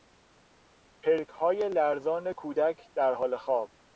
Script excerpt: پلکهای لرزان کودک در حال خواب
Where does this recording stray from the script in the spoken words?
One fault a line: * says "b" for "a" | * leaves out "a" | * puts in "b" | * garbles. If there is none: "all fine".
all fine